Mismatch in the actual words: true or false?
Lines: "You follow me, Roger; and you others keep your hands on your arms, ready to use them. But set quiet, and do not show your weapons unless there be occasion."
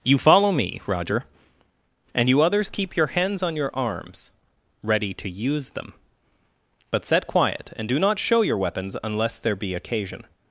false